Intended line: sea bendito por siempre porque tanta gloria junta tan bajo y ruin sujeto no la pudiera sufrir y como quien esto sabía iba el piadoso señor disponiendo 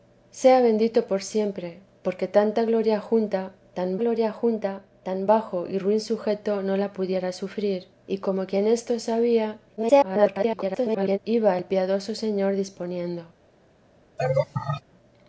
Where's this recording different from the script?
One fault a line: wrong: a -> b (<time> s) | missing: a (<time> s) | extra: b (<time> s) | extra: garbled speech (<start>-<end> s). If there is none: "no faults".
extra: gloria junta tan (4.0 s)
extra: garbled speech (9.8-11.2 s)